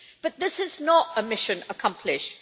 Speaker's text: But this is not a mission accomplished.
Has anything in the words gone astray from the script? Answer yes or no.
no